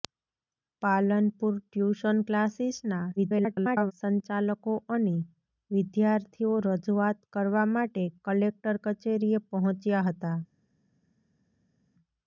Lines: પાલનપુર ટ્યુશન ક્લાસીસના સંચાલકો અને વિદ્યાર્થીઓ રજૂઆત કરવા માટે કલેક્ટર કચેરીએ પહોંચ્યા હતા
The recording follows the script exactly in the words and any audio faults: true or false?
false